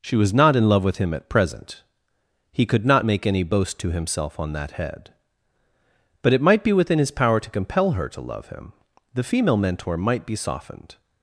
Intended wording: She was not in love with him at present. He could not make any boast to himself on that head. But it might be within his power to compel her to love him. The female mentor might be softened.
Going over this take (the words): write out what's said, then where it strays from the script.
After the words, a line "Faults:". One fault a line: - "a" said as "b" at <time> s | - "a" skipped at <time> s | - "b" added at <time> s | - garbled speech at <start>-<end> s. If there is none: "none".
She was not in love with him at present. He could not make any boast to himself on that head. But it might be within his power to compel her to love him. The female mentor might be softened.
Faults:
none